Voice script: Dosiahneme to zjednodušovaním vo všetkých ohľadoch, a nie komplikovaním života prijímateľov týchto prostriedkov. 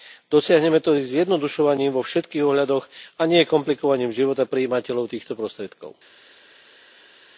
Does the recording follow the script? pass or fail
pass